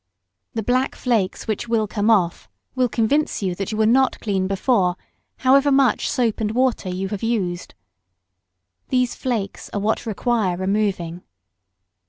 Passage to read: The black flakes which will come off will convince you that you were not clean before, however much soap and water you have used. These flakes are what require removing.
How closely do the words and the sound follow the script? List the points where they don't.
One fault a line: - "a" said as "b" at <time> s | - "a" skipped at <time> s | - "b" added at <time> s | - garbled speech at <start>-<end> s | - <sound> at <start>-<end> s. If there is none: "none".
none